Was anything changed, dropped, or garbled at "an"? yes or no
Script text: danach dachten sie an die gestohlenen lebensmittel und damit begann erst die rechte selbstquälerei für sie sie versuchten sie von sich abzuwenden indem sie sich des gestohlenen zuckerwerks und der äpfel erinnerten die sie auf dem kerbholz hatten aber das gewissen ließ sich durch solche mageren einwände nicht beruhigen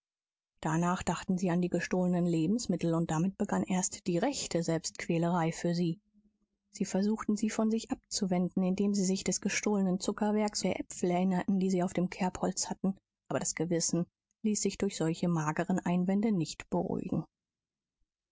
no